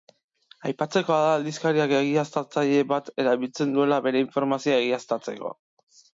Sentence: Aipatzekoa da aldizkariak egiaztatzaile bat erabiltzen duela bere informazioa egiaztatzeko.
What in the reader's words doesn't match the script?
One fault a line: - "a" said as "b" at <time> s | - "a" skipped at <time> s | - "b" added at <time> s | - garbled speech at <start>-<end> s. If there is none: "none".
none